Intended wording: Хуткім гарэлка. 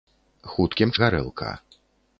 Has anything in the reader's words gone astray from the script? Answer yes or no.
no